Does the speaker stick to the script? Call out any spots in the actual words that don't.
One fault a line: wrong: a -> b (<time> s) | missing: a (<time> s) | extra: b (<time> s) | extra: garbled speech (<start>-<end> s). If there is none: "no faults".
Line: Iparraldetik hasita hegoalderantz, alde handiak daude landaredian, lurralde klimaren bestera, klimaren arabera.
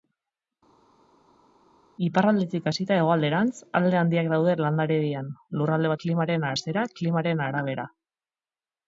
no faults